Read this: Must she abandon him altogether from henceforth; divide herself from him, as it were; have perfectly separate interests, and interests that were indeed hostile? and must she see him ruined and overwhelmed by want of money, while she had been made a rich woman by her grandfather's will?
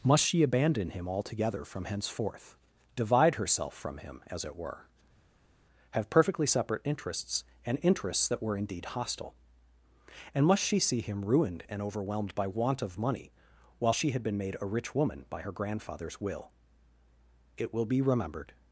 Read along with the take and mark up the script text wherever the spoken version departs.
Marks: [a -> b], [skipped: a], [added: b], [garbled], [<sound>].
Must she abandon him altogether from henceforth; divide herself from him, as it were; have perfectly separate interests, and interests that were indeed hostile? and must she see him ruined and overwhelmed by want of money, while she had been made a rich woman by her grandfather's will? [added: It will be remembered]